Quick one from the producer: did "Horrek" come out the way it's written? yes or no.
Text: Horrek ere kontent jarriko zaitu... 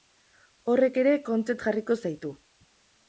yes